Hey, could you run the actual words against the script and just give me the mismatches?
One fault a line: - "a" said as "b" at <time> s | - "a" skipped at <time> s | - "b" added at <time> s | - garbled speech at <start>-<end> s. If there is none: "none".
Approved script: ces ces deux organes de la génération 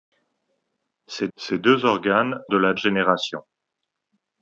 none